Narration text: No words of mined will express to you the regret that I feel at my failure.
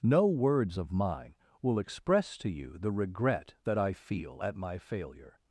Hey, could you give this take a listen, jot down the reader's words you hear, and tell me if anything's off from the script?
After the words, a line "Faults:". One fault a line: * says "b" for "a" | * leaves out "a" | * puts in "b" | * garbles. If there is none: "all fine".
No words of mine will express to you the regret that I feel at my failure.
Faults:
* says "mine" for "mined"